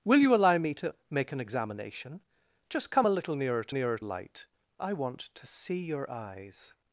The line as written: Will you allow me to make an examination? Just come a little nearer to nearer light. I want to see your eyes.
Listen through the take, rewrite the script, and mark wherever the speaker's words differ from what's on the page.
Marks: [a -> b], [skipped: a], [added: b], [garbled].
Will you allow me to make an examination? Just come a little nearer to nearer light. I want to see your eyes.